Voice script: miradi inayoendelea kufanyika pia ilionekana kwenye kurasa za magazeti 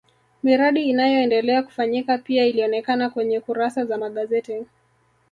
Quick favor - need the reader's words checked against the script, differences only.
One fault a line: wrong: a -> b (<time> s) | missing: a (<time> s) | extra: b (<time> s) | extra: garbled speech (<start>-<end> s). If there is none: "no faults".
no faults